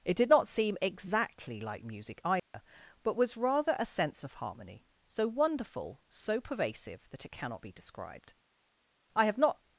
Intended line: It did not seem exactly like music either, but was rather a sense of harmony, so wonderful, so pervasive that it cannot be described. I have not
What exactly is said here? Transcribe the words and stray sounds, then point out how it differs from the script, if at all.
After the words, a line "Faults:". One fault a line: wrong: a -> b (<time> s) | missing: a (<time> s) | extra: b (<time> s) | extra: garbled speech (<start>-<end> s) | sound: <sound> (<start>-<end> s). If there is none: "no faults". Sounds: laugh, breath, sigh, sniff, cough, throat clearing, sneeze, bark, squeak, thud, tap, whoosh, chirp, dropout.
It did not seem exactly like music either, but was rather a sense of harmony, so wonderful, so pervasive that it cannot be described. I have not
Faults:
sound: dropout (2.4-2.5 s)